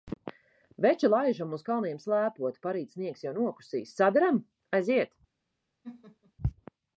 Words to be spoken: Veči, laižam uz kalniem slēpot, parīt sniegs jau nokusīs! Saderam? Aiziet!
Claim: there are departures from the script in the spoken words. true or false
false